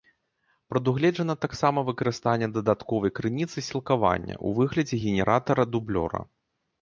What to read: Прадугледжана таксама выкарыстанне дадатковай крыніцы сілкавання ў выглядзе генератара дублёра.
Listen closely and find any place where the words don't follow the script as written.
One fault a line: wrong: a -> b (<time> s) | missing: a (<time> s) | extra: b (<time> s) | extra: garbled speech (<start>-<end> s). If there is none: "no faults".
no faults